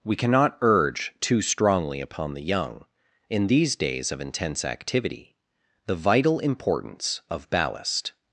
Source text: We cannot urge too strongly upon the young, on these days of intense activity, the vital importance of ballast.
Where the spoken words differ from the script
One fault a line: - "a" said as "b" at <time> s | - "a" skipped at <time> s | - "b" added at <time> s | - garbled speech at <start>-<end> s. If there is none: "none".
- "on" said as "in" at 3.3 s